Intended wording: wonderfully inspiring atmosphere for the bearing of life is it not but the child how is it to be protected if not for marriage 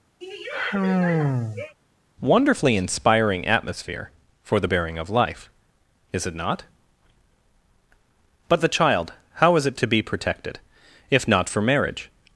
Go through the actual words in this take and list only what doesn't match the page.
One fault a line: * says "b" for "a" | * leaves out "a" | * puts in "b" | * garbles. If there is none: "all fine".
all fine